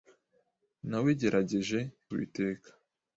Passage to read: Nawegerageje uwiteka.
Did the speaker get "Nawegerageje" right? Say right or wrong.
right